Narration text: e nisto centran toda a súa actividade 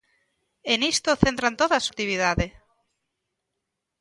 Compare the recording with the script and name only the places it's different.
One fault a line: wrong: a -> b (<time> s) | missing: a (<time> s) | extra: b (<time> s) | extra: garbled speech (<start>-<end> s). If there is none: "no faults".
missing: súa (1.9 s)